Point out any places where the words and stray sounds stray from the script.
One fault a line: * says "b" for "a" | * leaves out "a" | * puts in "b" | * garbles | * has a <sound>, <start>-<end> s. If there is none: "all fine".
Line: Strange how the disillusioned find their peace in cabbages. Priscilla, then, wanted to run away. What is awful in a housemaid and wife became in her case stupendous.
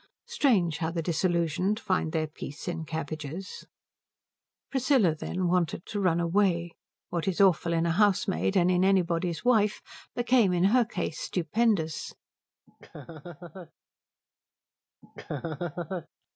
* puts in "in anybody's"
* has a laugh, 12.7-13.7 s
* has a laugh, 15.0-16.1 s